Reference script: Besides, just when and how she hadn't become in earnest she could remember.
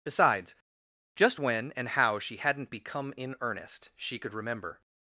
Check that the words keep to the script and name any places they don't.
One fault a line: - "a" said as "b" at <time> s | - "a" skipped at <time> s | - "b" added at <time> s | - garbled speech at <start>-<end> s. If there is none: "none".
none